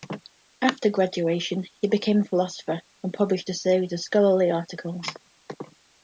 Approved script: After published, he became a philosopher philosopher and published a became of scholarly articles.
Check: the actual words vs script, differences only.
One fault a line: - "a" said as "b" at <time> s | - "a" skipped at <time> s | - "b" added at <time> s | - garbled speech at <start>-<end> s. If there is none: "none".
- "published" said as "graduation" at 0.9 s
- "philosopher" skipped at 2.8 s
- "became" said as "series" at 3.5 s